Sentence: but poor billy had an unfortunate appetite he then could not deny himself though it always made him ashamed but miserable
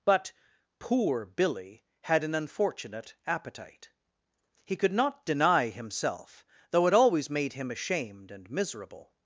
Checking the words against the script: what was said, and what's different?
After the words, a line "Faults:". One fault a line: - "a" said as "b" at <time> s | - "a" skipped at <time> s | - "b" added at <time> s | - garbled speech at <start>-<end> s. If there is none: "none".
but poor billy had an unfortunate appetite he could not deny himself though it always made him ashamed and miserable
Faults:
- "then" skipped at 4.8 s
- "but" said as "and" at 8.3 s